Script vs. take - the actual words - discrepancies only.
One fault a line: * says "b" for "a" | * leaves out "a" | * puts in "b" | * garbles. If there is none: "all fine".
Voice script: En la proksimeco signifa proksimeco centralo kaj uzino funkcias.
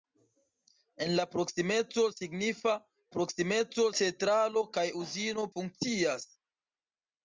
all fine